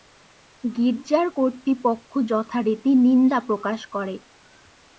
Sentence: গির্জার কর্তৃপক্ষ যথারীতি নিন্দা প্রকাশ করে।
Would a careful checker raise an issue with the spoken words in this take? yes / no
no